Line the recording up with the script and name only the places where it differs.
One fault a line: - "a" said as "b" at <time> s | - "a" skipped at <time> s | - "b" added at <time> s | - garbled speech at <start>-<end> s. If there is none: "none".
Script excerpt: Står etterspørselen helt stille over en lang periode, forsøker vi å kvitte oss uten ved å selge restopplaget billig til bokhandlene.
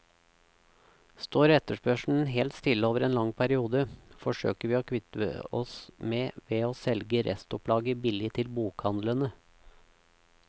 - "uten" said as "med" at 6.1 s